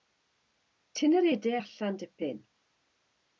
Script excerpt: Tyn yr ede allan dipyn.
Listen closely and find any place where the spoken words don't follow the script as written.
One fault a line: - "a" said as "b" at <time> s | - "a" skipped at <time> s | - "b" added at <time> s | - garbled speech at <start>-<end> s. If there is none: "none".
none